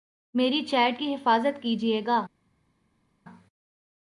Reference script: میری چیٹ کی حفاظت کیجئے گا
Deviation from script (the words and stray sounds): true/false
false